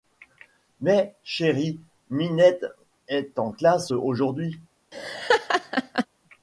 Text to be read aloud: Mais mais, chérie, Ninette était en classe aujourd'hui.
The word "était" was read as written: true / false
false